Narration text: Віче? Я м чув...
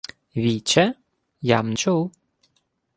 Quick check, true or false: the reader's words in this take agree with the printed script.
true